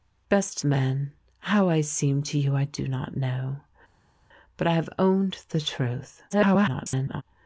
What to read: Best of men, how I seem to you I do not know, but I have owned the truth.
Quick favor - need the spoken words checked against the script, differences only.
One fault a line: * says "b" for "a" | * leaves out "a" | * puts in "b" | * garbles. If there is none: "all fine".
* leaves out "of"
* garbles